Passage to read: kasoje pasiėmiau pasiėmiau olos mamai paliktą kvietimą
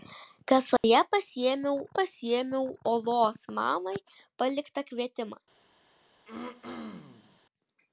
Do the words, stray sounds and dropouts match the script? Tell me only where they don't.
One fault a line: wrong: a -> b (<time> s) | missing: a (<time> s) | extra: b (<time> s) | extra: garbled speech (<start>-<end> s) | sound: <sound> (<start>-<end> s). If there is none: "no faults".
sound: dropout (0.8-0.8 s)
sound: throat clearing (6.3-7.4 s)